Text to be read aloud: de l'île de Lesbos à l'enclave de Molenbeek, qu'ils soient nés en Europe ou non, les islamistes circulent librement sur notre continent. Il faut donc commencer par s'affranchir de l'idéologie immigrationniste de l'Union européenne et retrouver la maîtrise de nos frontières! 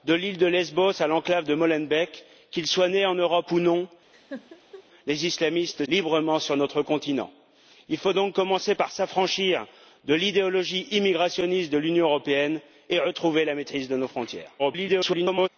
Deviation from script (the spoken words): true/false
true